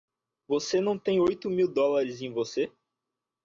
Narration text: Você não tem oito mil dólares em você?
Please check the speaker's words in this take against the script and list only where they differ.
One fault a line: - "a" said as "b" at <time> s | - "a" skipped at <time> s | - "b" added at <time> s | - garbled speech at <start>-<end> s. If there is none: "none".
none